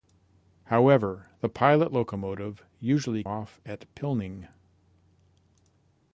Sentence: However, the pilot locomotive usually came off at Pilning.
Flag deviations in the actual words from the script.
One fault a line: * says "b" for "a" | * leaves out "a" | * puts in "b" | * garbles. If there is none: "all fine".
* leaves out "came"